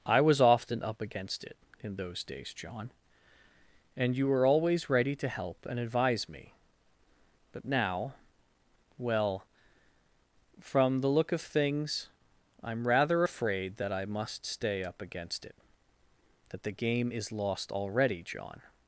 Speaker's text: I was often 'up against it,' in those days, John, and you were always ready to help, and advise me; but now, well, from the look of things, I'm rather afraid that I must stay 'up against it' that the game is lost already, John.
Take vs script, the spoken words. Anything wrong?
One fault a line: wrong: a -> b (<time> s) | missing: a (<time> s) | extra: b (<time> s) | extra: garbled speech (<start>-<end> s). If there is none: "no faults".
no faults